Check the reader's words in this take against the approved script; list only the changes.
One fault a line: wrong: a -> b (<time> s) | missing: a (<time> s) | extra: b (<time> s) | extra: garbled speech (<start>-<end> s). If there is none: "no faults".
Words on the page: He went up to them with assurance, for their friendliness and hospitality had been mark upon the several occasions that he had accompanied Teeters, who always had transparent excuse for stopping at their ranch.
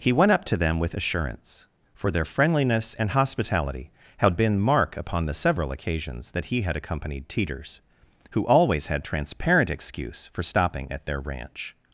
no faults